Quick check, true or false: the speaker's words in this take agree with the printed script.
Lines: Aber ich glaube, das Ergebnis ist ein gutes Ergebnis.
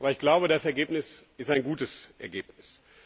true